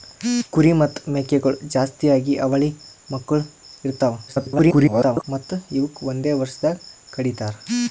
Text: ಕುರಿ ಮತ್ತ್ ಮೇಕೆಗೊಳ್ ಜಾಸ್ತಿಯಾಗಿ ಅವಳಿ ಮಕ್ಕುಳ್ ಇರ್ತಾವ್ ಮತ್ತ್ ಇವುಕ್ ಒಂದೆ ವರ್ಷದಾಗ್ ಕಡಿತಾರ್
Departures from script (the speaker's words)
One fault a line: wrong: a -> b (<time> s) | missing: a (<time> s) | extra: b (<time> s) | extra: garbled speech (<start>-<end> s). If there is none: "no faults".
extra: garbled speech (4.3-5.2 s)